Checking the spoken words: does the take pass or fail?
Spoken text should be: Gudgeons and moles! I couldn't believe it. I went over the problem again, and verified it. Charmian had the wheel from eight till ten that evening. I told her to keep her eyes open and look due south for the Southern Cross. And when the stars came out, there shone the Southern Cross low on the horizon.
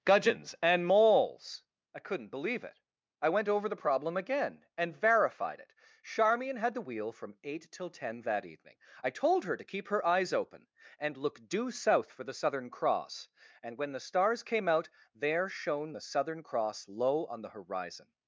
pass